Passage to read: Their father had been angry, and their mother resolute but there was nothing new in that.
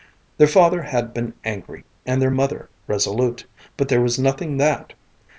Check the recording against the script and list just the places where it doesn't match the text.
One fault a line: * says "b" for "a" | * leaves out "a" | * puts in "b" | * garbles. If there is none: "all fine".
* leaves out "new in"